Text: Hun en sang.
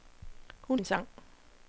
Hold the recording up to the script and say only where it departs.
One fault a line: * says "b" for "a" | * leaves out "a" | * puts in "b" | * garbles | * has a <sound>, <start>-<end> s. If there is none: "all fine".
all fine